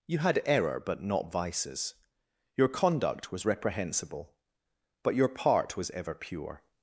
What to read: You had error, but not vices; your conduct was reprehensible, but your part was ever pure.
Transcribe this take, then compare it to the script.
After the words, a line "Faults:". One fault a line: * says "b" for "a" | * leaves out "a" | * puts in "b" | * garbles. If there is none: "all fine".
You had error, but not vices; your conduct was reprehensible, but your part was ever pure.
Faults:
all fine